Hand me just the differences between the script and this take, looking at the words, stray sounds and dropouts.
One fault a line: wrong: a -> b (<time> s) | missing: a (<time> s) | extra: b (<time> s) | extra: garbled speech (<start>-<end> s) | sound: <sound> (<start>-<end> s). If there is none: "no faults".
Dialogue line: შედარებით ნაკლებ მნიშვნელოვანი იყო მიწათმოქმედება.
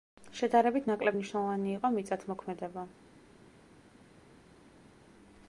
no faults